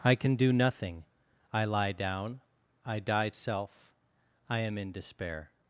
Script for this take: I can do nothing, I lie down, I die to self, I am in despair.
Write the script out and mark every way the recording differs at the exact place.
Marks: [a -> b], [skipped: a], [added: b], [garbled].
I can do nothing, I lie down, I die [skipped: to] self, I am in despair.